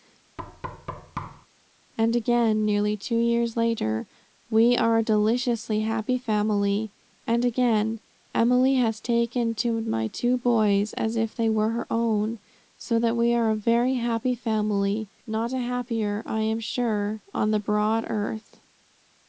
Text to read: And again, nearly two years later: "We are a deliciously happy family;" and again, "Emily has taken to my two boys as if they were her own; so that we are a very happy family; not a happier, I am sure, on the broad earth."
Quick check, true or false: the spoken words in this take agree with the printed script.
true